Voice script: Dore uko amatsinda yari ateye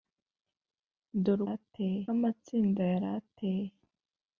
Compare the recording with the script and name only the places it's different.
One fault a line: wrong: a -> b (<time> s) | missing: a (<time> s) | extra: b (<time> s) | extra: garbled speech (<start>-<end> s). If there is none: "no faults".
wrong: uko -> ateye (1.5 s)